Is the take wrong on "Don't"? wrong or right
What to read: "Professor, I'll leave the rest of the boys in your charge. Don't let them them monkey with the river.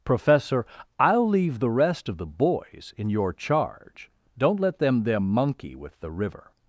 right